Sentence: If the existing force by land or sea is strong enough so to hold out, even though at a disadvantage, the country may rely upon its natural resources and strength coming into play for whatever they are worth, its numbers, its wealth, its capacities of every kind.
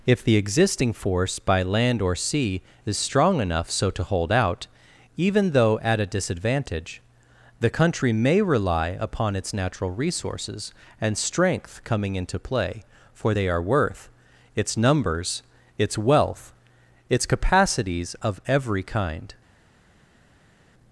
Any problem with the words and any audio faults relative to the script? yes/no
yes